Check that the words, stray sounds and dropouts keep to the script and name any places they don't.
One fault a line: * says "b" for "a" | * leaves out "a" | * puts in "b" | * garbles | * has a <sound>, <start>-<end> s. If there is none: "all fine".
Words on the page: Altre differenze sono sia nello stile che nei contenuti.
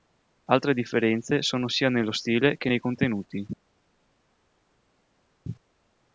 all fine